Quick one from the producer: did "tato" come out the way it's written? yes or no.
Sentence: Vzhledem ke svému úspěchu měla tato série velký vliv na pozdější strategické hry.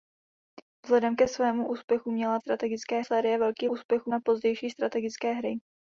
no